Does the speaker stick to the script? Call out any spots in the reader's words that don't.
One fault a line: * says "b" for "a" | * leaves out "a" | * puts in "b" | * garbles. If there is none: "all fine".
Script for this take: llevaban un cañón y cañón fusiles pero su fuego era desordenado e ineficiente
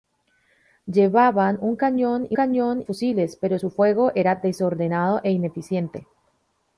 all fine